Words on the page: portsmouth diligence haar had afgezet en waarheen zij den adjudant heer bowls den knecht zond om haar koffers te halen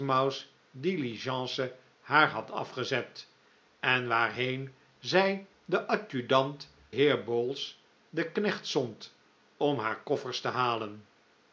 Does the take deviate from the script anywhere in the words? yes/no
no